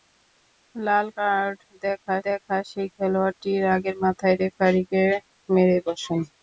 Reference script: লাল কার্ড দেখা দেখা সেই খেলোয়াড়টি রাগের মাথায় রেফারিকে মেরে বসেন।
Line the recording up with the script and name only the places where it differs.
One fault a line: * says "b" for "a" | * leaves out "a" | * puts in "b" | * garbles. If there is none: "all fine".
all fine